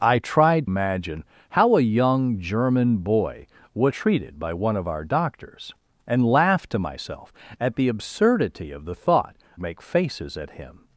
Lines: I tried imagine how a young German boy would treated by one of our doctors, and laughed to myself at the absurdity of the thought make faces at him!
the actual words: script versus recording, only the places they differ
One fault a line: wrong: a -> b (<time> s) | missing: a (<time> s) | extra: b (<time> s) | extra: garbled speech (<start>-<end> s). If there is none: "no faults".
no faults